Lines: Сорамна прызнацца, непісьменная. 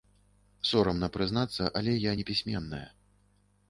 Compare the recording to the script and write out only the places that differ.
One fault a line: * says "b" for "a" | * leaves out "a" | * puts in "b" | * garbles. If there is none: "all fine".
* puts in "але я"